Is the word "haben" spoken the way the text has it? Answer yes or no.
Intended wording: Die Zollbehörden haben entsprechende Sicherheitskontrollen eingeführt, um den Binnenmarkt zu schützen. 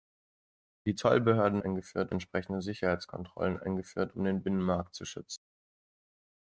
no